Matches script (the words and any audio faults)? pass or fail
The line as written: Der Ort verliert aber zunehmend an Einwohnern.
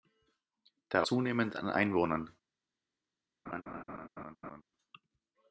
fail